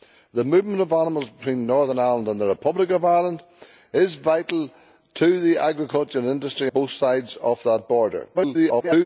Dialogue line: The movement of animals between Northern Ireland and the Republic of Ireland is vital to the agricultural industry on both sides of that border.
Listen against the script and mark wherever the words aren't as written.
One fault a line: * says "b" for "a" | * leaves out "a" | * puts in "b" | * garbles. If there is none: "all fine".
* leaves out "on"
* garbles